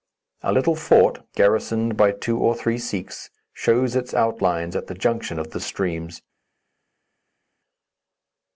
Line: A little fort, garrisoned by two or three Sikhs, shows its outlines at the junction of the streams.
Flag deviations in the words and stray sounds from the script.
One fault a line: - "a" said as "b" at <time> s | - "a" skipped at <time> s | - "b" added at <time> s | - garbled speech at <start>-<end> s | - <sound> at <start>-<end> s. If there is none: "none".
none